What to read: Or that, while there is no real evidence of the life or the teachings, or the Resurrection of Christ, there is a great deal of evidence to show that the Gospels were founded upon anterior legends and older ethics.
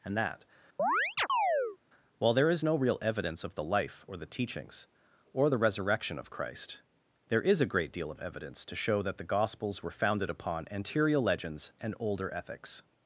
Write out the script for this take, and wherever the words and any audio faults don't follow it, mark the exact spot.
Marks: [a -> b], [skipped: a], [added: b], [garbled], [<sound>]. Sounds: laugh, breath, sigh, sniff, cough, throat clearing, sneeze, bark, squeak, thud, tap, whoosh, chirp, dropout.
[Or -> And] that, [chirp] while there is no real evidence of the life or the teachings, or the Resurrection of Christ, there is a great deal of evidence to show that the Gospels were founded upon anterior legends and older ethics.